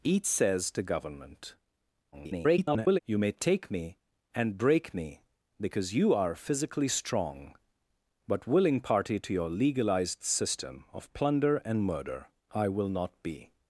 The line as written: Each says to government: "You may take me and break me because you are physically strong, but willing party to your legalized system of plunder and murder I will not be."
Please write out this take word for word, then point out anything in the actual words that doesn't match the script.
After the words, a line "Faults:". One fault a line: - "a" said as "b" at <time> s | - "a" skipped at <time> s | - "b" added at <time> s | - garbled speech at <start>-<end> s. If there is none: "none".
Each says to government: [garbled] "You may take me and break me because you are physically strong, but willing party to your legalized system of plunder and murder I will not be."
Faults:
- garbled speech at 2.1-3.0 s